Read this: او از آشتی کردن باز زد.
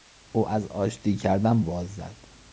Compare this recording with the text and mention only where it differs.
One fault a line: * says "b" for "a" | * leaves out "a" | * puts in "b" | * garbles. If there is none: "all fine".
all fine